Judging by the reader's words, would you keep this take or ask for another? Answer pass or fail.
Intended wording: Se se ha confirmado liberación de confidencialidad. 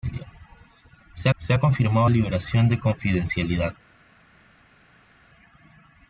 pass